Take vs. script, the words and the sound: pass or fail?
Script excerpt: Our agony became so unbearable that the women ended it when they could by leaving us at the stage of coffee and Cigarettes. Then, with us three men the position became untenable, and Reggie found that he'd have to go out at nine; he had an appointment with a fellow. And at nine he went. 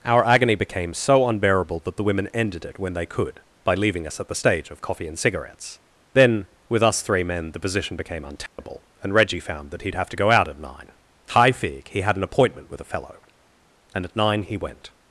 fail